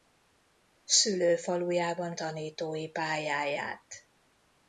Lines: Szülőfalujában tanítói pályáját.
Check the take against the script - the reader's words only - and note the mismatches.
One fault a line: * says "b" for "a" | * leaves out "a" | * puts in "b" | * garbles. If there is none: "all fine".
all fine